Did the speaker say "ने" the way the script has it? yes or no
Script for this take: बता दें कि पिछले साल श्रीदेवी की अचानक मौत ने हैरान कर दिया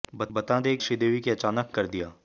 no